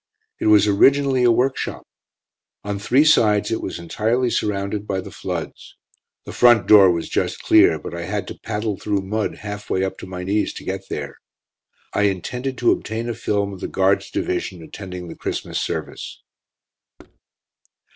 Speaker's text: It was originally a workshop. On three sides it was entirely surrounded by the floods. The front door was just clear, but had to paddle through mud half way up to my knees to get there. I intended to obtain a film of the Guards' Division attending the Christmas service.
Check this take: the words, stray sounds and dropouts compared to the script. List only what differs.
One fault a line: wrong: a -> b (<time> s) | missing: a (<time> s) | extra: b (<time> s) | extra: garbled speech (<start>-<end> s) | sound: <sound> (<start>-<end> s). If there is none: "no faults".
extra: I (7.9 s)
sound: thud (17.0-17.2 s)